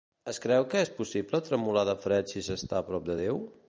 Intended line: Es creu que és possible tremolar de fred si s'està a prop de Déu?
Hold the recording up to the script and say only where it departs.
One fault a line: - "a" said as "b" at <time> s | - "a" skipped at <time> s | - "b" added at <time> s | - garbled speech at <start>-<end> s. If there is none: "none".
none